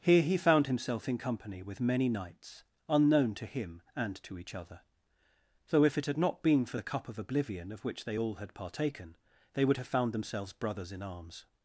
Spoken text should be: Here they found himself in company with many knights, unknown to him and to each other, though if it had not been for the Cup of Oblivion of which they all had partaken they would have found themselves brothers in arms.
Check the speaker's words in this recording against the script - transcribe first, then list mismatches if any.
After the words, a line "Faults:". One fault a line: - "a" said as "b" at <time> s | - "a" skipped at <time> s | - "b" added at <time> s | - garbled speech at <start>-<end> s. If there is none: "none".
Here he found himself in company with many knights, unknown to him and to each other, though if it had not been for the Cup of Oblivion of which they all had partaken they would have found themselves brothers in arms.
Faults:
- "they" said as "he" at 0.2 s